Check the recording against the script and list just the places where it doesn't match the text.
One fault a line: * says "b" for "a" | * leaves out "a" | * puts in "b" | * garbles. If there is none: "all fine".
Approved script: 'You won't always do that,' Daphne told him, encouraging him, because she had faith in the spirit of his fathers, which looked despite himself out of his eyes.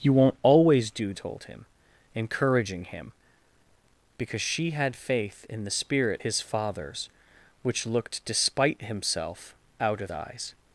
* leaves out "that Daphne"
* leaves out "of"
* leaves out "his"